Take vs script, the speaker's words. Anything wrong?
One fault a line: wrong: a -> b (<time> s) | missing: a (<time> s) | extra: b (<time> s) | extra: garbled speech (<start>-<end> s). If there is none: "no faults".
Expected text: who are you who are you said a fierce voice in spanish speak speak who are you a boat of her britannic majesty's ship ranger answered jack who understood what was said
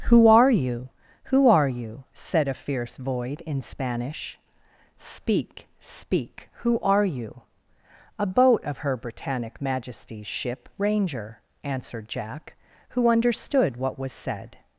wrong: voice -> void (3.0 s)